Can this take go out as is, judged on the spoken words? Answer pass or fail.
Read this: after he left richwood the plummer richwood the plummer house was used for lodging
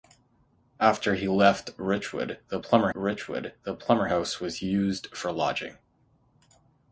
pass